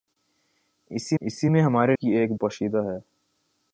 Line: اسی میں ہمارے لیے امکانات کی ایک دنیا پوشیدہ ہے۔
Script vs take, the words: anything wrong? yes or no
yes